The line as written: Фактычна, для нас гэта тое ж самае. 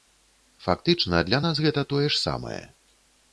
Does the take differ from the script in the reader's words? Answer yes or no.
no